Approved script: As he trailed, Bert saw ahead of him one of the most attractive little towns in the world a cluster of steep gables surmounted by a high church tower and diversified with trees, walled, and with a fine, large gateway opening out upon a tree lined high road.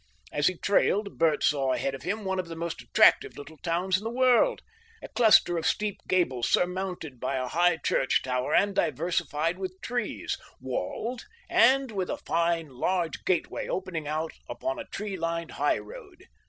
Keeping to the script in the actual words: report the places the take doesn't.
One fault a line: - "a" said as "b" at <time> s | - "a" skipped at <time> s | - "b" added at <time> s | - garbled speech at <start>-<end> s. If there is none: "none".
none